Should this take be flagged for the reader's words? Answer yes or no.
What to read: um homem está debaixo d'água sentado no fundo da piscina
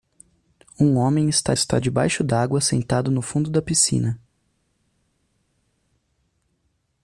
yes